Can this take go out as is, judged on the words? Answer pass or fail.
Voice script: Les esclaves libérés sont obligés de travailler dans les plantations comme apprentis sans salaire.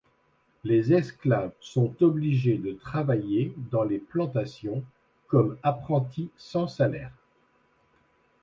fail